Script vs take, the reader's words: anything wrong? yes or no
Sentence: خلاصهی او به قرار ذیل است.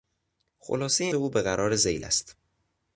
no